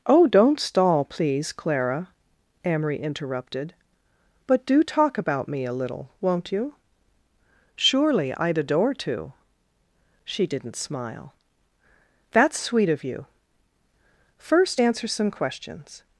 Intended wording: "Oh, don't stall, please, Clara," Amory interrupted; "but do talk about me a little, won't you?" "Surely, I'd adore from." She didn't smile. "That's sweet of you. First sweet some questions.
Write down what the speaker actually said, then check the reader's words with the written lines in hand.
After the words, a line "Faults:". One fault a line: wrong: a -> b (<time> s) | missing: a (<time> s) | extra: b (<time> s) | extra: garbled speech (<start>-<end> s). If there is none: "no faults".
"Oh, don't stall, please, Clara," Amory interrupted; "but do talk about me a little, won't you?" "Surely, I'd adore to." She didn't smile. "That's sweet of you. First answer some questions.
Faults:
wrong: from -> to (8.9 s)
wrong: sweet -> answer (14.8 s)